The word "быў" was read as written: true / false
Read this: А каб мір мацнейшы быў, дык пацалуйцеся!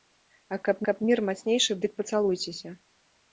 false